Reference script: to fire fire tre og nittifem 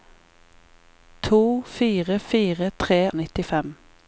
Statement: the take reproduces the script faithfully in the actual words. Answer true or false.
true